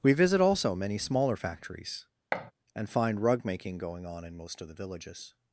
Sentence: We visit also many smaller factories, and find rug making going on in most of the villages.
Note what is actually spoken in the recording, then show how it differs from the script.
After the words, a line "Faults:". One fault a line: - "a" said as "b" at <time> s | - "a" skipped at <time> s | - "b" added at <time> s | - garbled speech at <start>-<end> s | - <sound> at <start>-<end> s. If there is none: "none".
We visit also many smaller factories, and find rug making going on in most of the villages.
Faults:
- thud at 2.3-2.5 s